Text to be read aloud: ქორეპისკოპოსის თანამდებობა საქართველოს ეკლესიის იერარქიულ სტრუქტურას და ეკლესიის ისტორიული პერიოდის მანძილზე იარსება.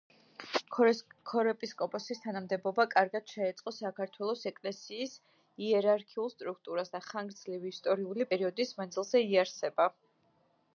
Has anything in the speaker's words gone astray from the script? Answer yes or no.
yes